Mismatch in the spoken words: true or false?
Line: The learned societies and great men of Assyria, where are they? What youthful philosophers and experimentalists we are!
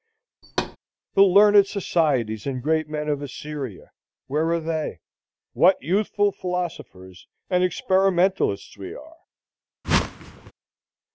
false